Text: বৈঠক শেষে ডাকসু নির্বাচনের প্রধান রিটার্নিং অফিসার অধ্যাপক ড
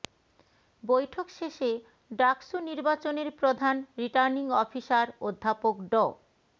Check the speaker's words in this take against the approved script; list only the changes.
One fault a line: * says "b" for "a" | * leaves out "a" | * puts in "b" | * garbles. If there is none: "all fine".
all fine